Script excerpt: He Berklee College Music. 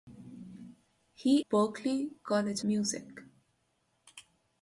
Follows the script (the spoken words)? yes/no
yes